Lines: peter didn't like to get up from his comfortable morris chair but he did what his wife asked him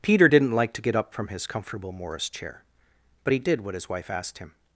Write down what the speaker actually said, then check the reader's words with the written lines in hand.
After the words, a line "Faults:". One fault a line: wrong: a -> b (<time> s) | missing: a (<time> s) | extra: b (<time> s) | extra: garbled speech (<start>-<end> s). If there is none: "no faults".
peter didn't like to get up from his comfortable morris chair but he did what his wife asked him
Faults:
no faults